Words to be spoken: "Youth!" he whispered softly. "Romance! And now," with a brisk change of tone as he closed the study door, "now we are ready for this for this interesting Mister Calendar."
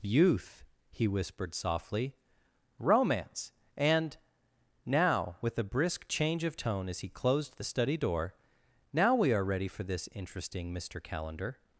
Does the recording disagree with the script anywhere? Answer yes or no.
yes